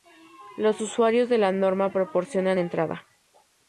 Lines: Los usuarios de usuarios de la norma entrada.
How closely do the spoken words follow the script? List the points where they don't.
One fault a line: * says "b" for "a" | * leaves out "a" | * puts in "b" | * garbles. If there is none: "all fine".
* leaves out "usuarios de"
* puts in "proporcionan"